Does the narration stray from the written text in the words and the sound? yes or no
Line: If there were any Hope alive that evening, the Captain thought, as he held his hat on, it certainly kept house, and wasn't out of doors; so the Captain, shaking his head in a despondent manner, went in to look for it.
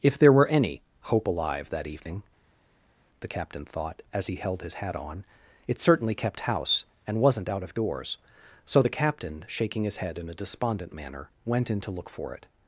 no